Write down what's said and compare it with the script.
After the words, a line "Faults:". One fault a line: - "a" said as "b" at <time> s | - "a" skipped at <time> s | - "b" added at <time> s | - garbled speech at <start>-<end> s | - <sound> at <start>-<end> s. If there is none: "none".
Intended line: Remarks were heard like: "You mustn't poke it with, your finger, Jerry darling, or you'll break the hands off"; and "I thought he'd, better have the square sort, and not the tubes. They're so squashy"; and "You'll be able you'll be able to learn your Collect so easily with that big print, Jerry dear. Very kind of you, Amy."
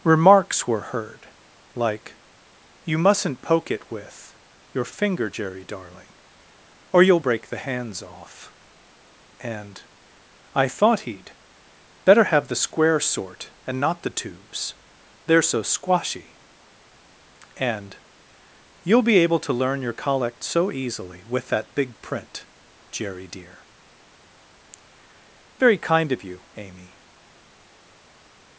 Remarks were heard like: "You mustn't poke it with, your finger, Jerry darling, or you'll break the hands off"; and "I thought he'd, better have the square sort, and not the tubes. They're so squashy"; and "You'll be able to learn your Collect so easily with that big print, Jerry dear. Very kind of you, Amy."
Faults:
- "you'll be able" skipped at 19.4 s